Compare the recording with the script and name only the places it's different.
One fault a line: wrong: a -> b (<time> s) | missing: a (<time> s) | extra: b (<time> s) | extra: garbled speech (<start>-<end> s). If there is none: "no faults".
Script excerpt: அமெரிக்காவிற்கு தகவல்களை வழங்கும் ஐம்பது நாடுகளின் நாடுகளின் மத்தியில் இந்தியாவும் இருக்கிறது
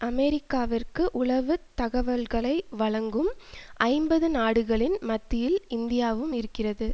extra: உளவு (1.1 s)
missing: நாடுகளின் (5.0 s)